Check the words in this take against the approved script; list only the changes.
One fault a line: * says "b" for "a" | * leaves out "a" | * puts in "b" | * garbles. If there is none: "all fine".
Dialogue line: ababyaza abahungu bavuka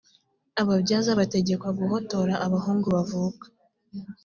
* puts in "bategekwa guhotora"